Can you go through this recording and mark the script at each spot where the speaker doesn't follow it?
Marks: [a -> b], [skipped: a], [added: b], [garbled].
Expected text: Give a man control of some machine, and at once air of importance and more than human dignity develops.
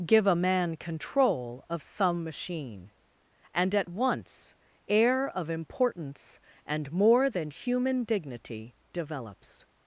Give a man control of some machine, and at once air of importance and more than human dignity develops.